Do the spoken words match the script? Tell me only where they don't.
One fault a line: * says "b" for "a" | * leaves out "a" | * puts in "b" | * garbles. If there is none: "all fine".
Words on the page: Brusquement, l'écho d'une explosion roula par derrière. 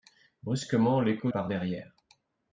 * leaves out "d'une explosion roula"